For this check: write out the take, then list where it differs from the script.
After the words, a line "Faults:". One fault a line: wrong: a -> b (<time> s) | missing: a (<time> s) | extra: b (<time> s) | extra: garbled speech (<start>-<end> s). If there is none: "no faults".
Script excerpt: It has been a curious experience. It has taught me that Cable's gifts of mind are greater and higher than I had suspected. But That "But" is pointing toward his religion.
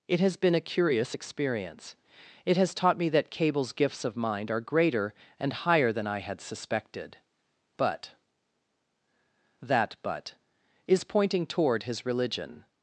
It has been a curious experience. It has taught me that Cable's gifts of mind are greater and higher than I had suspected. But That "But" is pointing toward his religion.
Faults:
no faults